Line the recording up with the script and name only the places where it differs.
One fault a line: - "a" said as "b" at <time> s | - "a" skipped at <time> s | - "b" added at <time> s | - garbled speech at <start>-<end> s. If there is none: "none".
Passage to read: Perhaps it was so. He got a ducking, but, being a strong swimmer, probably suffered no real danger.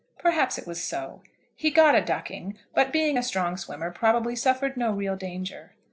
none